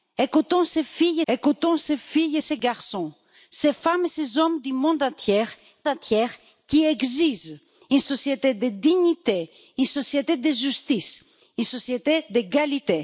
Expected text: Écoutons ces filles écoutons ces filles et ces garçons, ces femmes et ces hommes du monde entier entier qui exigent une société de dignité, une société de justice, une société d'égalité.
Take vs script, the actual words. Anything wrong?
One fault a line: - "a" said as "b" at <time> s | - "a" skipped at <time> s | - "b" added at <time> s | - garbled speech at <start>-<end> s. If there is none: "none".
none